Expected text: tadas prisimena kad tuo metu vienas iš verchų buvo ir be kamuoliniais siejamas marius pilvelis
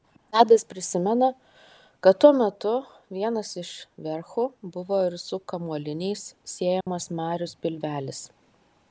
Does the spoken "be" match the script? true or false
false